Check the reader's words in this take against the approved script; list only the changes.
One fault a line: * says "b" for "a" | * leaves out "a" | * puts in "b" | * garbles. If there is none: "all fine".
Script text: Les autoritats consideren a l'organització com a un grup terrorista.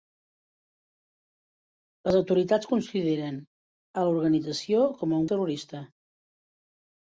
* leaves out "grup"